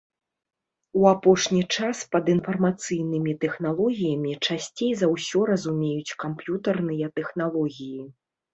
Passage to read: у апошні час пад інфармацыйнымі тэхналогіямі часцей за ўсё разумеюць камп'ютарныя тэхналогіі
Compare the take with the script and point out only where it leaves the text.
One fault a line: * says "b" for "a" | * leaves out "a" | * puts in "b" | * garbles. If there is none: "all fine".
all fine